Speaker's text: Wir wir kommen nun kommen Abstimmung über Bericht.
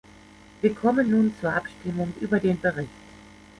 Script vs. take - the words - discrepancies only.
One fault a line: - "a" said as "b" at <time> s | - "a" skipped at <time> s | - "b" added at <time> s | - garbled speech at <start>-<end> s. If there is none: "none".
- "wir" skipped at 0.7 s
- "kommen" said as "zur" at 1.4 s
- "den" added at 2.4 s